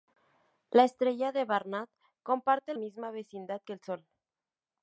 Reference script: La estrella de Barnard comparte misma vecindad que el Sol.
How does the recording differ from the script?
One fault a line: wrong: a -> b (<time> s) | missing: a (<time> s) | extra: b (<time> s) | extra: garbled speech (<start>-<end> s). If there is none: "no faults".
no faults